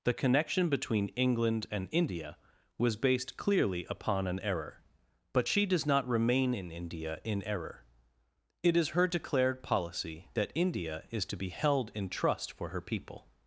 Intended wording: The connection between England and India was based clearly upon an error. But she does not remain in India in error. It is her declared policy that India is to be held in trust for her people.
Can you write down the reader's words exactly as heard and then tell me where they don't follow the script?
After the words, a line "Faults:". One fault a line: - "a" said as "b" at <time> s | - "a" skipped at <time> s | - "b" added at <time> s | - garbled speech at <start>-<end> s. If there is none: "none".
The connection between England and India was based clearly upon an error. But she does not remain in India in error. It is her declared policy that India is to be held in trust for her people.
Faults:
none